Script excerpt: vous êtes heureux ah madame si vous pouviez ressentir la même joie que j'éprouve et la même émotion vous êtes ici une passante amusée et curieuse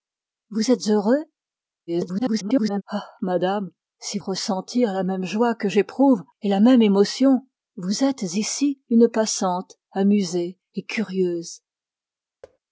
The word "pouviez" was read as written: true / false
false